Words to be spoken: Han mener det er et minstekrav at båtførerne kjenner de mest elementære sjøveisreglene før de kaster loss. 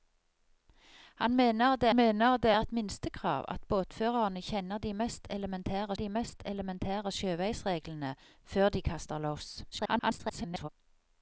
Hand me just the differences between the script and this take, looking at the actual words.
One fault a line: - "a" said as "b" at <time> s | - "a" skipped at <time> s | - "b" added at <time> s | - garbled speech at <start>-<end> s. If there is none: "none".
- "mener det" added at 1.9 s
- "de mest elementære" added at 5.9 s
- garbled speech at 9.7-10.7 s